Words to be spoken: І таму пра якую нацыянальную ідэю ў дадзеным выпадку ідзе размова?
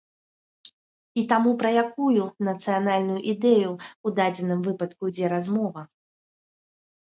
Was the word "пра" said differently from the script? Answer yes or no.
no